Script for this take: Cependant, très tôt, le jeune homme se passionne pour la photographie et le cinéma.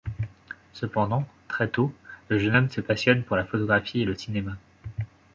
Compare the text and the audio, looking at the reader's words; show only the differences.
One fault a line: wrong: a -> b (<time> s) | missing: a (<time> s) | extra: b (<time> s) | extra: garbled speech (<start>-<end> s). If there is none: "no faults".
no faults